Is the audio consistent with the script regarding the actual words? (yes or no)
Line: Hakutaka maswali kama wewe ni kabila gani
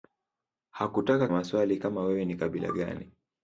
yes